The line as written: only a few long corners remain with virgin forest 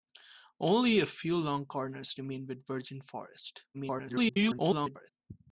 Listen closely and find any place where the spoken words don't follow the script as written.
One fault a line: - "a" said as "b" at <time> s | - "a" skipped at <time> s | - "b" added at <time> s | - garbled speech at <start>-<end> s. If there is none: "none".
- garbled speech at 3.7-5.1 s